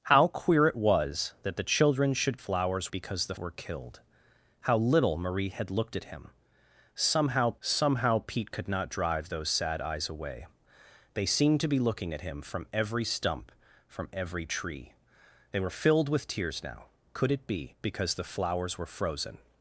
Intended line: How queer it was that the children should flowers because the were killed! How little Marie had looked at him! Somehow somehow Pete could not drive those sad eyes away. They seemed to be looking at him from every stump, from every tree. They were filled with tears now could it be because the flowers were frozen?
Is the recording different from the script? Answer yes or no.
no